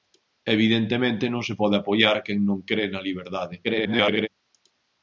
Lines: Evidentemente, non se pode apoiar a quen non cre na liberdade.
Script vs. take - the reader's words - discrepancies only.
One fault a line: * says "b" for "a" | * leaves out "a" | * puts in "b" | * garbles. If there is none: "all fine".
* garbles